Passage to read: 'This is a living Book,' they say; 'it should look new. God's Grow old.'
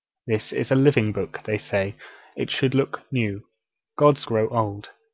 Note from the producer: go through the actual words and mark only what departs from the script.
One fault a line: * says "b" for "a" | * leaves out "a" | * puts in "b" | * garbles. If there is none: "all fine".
all fine